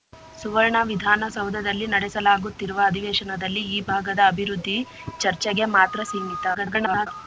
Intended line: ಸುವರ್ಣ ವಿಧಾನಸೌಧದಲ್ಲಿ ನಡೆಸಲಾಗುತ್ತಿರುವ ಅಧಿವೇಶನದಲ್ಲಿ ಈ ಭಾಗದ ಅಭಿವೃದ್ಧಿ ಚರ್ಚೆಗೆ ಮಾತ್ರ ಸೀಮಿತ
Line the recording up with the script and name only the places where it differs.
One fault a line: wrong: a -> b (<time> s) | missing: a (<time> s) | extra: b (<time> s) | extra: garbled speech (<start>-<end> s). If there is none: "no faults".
extra: garbled speech (6.5-7.1 s)